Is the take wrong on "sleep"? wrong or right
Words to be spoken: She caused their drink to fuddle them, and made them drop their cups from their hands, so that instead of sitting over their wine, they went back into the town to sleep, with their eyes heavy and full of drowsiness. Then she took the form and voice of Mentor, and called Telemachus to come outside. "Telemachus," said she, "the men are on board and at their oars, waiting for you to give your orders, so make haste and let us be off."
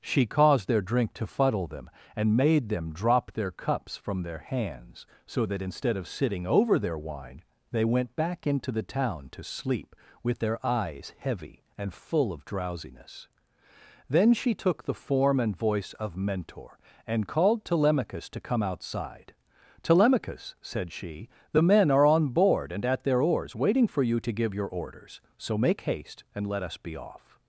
right